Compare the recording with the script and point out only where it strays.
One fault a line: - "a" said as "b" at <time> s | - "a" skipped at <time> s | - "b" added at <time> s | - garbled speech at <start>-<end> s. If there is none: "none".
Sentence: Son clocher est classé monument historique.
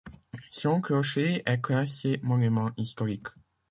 none